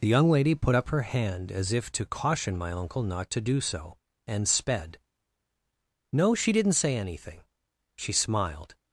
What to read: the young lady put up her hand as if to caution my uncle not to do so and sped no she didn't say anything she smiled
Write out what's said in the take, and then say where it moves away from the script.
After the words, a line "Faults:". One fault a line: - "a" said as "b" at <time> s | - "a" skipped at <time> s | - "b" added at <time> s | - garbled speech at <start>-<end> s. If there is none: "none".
the young lady put up her hand as if to caution my uncle not to do so and sped no she didn't say anything she smiled
Faults:
none